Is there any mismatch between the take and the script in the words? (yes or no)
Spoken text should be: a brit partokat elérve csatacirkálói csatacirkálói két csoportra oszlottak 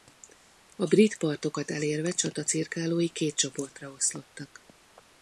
yes